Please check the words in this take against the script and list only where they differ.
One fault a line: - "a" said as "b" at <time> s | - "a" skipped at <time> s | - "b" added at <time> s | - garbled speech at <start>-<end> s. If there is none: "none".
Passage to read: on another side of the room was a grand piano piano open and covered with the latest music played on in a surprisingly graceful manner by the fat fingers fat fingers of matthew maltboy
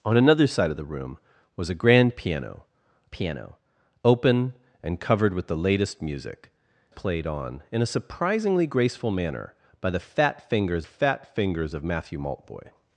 none